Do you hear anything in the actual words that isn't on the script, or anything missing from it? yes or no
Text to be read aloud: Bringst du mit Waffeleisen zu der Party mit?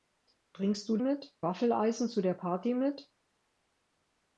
no